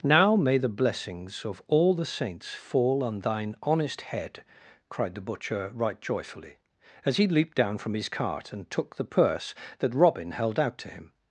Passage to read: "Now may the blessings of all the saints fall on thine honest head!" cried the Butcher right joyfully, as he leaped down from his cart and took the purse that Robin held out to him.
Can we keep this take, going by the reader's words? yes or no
yes